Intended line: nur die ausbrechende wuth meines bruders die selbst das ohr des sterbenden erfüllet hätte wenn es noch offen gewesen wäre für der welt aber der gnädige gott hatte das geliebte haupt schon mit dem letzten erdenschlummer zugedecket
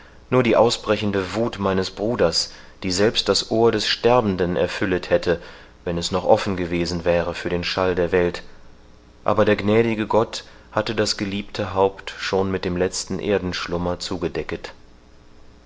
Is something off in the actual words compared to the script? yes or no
yes